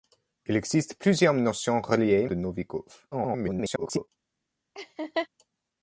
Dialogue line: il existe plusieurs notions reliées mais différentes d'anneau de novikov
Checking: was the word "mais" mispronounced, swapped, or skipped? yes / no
yes